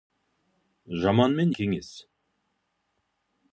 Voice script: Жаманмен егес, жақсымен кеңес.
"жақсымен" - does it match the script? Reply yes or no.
no